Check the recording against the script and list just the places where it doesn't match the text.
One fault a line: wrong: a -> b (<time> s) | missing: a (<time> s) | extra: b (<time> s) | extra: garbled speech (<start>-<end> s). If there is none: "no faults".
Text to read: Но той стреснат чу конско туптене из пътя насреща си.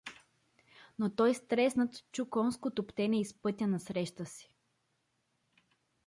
no faults